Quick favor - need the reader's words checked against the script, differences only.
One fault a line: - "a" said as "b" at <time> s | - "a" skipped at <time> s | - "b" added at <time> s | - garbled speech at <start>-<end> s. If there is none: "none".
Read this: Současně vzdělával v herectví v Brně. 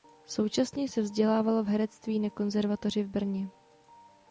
- "se" added at 0.9 s
- "na Konzervatoři" added at 2.2 s